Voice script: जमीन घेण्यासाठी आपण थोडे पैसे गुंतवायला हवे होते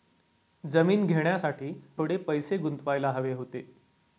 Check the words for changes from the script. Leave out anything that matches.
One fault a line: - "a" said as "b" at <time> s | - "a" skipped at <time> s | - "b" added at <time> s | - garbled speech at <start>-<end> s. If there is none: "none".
- "आपण" skipped at 1.7 s